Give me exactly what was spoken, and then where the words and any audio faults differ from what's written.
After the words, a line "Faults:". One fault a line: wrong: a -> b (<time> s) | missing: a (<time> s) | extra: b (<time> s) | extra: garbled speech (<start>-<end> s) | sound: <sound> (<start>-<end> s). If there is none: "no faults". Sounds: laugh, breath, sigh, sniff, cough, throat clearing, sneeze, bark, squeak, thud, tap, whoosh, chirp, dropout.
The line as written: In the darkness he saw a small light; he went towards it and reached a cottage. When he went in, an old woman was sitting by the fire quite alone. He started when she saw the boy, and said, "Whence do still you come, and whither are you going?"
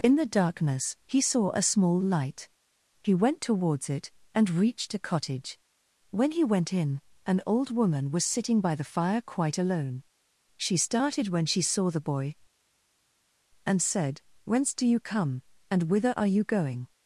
In the darkness he saw a small light; he went towards it and reached a cottage. When he went in, an old woman was sitting by the fire quite alone. She started when she saw the boy, and said, "Whence do you come, and whither are you going?"
Faults:
wrong: He -> She (10.6 s)
missing: still (14.8 s)